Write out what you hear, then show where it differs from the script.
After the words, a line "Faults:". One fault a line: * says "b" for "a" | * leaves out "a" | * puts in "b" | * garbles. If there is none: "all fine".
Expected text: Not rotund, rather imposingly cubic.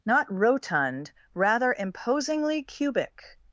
Not rotund, rather imposingly cubic.
Faults:
all fine